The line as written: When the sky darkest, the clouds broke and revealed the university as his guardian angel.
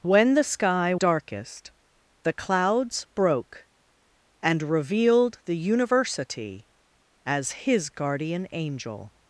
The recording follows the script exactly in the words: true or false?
true